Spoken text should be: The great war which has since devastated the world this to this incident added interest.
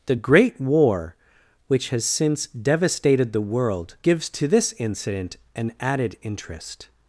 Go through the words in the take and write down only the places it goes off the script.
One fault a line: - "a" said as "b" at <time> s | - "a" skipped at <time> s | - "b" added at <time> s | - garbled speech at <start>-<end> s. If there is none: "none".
- "this" said as "gives" at 4.0 s
- "an" added at 5.5 s